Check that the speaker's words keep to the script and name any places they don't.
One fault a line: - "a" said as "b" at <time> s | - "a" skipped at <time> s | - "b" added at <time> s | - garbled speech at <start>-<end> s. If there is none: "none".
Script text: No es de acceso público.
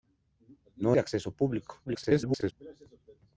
- "es" skipped at 1.0 s
- garbled speech at 1.9-2.5 s